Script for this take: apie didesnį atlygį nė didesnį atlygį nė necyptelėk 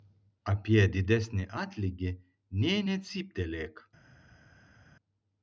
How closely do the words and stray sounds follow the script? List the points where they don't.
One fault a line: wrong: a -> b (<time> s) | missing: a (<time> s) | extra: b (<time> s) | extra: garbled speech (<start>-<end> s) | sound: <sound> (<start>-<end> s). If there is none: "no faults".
missing: didesnį atlygį nė (2.8 s)